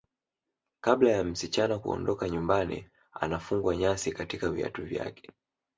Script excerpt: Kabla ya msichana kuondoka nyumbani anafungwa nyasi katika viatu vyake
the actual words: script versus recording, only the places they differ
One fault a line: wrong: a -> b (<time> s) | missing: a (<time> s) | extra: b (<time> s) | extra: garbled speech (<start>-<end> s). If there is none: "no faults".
no faults